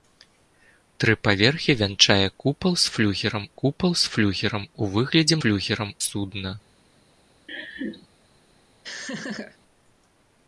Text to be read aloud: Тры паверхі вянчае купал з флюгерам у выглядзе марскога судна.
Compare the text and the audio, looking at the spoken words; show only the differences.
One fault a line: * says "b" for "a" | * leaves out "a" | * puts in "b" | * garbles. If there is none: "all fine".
* puts in "купал з флюгерам"
* says "флюгерам" for "марскога"